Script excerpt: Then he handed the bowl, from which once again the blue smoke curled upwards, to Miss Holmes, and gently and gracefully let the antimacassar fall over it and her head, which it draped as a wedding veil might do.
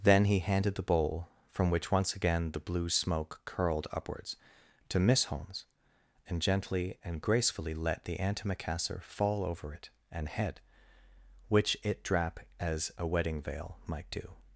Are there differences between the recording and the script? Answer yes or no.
yes